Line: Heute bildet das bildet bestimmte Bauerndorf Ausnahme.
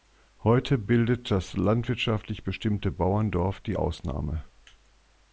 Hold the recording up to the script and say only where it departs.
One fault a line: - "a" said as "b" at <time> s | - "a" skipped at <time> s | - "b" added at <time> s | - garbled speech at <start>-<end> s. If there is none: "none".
- "bildet" said as "landwirtschaftlich" at 1.5 s
- "die" added at 3.6 s